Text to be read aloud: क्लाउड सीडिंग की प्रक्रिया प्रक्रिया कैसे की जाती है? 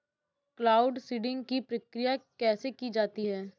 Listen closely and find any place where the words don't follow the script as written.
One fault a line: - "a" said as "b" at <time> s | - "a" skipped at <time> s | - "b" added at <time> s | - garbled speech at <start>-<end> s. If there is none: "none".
- "प्रक्रिया" skipped at 2.1 s